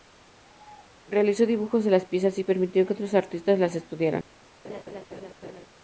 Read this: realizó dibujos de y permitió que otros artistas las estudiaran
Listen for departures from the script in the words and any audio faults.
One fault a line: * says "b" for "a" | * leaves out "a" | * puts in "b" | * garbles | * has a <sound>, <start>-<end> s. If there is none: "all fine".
* puts in "las piezas"
* has a laugh, 4.6-5.7 s